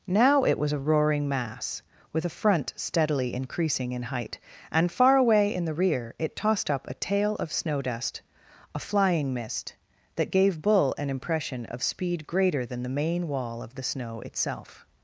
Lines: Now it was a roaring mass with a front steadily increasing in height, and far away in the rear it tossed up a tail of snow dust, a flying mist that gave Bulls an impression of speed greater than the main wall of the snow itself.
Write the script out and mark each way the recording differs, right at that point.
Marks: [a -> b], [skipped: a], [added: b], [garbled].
Now it was a roaring mass with a front steadily increasing in height, and far away in the rear it tossed up a tail of snow dust, a flying mist that gave [Bulls -> Bull] an impression of speed greater than the main wall of the snow itself.